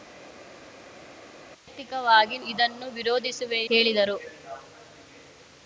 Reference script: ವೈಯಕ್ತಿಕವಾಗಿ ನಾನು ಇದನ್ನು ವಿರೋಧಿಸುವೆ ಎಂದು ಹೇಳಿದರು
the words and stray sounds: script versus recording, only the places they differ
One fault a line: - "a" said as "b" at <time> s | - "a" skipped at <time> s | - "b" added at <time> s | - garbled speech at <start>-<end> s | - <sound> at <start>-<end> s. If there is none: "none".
- "ನಾನು" skipped at 2.4 s
- "ಎಂದು" skipped at 3.6 s